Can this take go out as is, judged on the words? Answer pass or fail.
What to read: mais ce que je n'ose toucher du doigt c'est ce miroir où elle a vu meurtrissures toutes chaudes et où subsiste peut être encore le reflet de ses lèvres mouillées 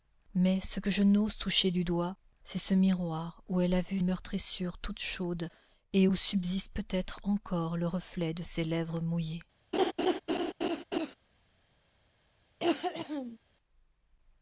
pass